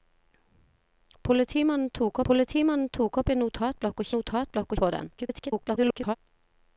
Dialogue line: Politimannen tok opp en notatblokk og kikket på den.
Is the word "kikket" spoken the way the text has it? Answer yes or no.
no